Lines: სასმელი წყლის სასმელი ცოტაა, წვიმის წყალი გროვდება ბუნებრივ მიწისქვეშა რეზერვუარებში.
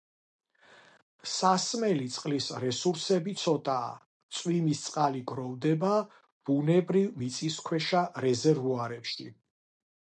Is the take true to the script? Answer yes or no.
no